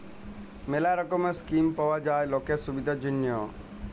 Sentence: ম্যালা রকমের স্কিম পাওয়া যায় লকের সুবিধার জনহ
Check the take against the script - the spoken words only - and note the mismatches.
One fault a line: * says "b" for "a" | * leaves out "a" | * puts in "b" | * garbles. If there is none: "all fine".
all fine